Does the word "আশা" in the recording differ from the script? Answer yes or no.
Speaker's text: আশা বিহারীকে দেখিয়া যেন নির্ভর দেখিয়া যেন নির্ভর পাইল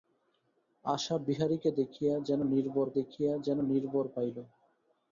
no